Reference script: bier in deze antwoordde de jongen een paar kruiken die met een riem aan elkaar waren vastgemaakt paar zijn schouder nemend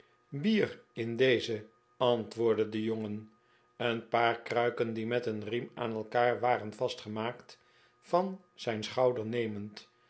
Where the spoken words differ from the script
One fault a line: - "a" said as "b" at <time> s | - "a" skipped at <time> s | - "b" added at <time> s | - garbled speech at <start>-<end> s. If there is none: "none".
- "paar" said as "van" at 8.0 s